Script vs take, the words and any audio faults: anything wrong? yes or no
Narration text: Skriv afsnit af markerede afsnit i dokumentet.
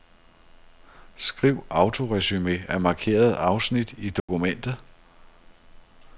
yes